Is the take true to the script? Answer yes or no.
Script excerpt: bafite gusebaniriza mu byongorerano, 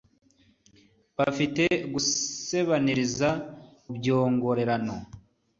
no